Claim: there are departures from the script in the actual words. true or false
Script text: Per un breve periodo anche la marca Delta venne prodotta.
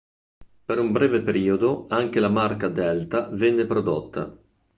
false